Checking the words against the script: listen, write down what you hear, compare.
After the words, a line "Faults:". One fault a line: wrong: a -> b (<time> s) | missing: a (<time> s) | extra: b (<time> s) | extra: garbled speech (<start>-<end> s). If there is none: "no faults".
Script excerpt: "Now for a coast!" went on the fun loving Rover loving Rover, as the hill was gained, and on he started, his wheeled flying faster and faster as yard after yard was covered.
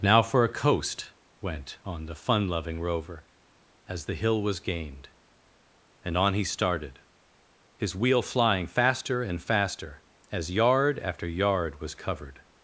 "Now for a coast!" went on the fun loving Rover, as the hill was gained, and on he started, his wheel flying faster and faster as yard after yard was covered.
Faults:
missing: loving Rover (3.2 s)
wrong: wheeled -> wheel (8.0 s)